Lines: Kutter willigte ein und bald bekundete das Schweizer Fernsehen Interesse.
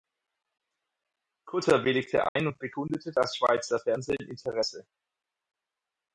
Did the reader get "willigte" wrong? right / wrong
right